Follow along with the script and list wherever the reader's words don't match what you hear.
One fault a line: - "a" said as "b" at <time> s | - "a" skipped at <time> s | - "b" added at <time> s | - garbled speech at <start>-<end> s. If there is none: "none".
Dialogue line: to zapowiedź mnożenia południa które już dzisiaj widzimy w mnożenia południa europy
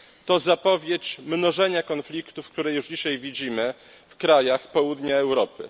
- "południa" said as "konfliktów" at 1.8 s
- "mnożenia" said as "krajach" at 4.2 s